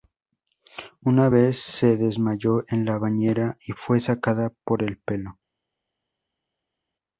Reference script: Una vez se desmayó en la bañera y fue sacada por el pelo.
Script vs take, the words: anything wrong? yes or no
no